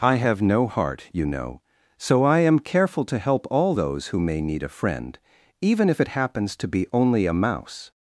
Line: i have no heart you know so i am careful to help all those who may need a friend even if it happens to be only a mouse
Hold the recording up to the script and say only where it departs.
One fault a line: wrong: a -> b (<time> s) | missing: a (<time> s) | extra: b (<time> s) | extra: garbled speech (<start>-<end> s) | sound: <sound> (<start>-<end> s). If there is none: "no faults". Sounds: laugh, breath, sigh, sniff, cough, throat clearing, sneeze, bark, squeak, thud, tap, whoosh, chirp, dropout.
no faults